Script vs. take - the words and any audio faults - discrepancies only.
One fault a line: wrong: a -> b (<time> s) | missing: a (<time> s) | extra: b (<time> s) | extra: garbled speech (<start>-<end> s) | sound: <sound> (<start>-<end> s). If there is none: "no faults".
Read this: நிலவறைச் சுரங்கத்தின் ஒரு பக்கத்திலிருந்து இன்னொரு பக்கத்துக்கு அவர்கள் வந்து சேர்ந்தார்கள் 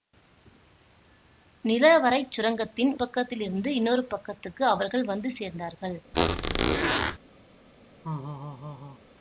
missing: ஒரு (2.9 s)
sound: squeak (6.1-7.2 s)
sound: laugh (8.0-9.0 s)